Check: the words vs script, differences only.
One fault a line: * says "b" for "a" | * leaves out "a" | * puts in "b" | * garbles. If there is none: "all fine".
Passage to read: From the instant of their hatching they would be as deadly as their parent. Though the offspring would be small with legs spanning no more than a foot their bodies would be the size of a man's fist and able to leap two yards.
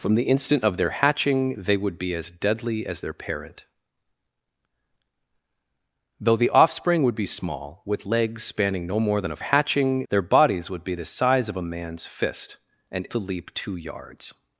* says "hatching" for "foot"
* leaves out "able"